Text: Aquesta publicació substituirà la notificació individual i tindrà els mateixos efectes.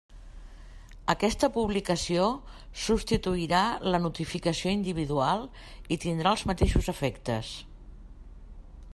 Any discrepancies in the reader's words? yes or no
no